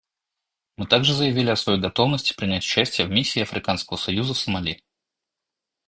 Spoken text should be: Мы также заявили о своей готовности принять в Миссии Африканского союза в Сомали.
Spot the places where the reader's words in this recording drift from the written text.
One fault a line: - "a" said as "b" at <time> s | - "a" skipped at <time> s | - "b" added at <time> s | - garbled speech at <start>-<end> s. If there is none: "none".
- "участие" added at 2.6 s